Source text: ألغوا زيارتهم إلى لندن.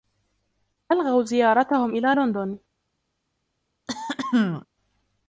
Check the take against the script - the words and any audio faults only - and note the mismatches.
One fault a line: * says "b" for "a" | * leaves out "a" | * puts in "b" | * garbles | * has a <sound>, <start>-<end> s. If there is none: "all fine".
* has a throat clearing, 3.9-4.7 s